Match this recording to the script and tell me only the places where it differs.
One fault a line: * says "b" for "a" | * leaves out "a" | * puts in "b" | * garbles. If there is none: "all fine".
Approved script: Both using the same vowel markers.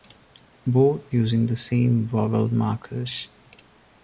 all fine